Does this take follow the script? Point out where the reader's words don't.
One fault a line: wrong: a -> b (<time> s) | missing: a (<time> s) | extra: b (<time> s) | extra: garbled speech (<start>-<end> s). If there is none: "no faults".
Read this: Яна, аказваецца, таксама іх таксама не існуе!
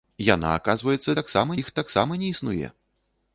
no faults